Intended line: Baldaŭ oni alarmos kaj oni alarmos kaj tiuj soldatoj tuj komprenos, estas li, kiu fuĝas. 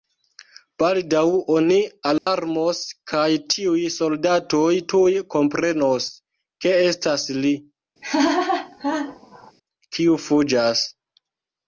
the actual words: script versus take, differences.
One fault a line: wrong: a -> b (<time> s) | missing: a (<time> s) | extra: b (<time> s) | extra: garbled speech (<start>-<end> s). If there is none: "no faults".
missing: oni alarmos kaj (3.3 s)
extra: ke (6.7 s)